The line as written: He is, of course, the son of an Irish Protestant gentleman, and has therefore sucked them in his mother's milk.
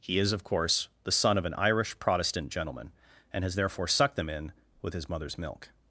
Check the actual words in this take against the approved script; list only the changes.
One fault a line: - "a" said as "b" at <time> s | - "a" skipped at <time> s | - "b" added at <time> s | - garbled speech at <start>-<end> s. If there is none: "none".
- "with" added at 4.8 s